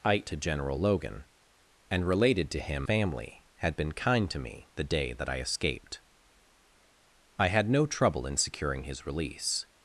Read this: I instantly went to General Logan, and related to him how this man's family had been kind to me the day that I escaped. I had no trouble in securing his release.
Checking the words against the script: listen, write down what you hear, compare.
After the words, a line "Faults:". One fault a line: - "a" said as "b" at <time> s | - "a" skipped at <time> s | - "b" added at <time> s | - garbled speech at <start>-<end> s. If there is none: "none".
I to General Logan, and related to him family had been kind to me the day that I escaped. I had no trouble in securing his release.
Faults:
- "instantly went" skipped at 0.2 s
- "how this man's" skipped at 2.9 s